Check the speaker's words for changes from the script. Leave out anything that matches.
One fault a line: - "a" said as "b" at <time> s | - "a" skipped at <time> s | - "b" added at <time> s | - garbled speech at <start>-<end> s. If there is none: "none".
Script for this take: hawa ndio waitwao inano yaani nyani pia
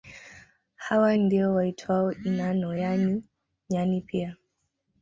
none